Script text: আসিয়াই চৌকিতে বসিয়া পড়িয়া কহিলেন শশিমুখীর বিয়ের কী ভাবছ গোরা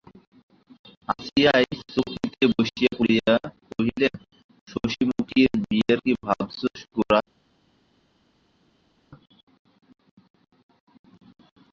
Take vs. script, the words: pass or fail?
pass